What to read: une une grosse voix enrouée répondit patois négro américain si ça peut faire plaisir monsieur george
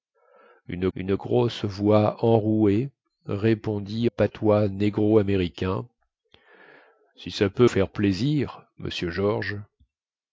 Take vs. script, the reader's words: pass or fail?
pass